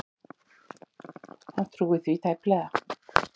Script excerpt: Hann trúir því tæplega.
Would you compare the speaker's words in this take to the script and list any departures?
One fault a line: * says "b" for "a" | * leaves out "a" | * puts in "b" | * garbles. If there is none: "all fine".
all fine